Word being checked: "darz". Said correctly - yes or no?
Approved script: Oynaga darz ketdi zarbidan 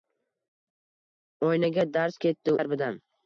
yes